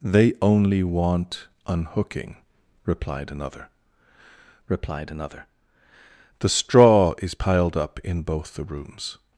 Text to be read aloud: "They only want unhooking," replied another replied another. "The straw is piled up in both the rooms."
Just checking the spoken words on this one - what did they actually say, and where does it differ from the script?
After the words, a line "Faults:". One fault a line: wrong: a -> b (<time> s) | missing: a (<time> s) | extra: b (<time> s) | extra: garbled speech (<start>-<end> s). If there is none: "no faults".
"They only want unhooking," replied another replied another. "The straw is piled up in both the rooms."
Faults:
no faults